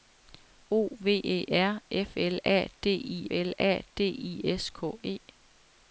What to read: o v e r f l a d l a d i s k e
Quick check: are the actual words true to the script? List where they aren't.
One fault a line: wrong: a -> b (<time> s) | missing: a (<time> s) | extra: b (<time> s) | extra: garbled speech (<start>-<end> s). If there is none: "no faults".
no faults